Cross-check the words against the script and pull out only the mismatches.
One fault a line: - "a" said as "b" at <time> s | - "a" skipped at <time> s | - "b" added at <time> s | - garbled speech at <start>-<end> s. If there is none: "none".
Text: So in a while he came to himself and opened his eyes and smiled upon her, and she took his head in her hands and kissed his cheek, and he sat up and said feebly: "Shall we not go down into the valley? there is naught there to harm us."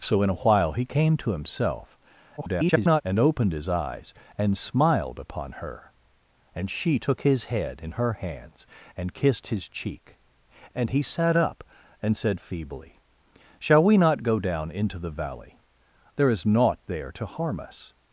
- garbled speech at 2.4-3.0 s